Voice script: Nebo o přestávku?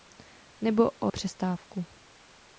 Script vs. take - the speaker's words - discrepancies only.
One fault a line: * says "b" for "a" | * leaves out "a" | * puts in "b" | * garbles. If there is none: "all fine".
all fine